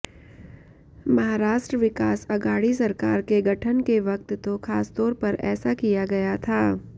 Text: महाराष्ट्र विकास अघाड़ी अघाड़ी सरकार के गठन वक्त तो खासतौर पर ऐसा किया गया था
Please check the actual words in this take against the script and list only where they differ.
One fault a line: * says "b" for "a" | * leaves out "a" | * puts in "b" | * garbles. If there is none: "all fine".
* leaves out "अघाड़ी"
* puts in "के"